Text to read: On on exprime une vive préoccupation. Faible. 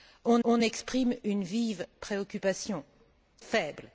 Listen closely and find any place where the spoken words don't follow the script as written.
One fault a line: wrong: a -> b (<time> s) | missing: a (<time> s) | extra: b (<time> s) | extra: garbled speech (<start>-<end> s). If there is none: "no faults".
no faults